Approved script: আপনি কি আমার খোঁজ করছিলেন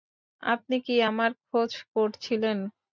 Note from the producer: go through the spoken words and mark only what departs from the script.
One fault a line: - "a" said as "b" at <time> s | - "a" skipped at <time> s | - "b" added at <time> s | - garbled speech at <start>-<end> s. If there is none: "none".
none